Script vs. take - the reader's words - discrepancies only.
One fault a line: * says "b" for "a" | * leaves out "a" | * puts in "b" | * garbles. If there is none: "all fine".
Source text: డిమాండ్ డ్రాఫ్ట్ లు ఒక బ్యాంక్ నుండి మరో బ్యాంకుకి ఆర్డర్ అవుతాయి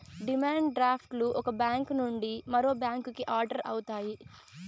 all fine